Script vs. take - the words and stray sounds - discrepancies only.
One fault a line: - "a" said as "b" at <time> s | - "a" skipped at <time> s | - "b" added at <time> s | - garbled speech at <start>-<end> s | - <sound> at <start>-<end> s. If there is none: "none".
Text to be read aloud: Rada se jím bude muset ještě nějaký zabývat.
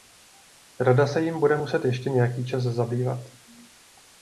- "čas" added at 2.5 s